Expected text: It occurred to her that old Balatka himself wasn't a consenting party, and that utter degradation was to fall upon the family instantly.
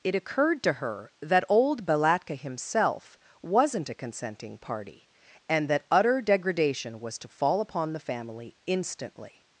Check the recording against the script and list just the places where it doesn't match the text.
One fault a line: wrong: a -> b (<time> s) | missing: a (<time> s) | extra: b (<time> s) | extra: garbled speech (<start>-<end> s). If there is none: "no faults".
no faults